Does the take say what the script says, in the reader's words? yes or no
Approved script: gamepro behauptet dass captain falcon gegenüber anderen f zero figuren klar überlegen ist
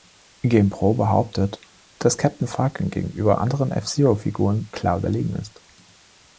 yes